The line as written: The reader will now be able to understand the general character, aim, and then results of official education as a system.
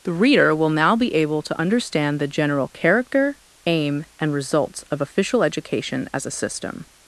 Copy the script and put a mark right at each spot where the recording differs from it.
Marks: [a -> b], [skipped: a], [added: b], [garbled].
The reader will now be able to understand the general character, aim, and [skipped: then] results of official education as a system.